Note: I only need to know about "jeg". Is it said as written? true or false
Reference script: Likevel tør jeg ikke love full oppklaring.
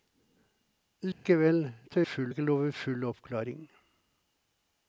false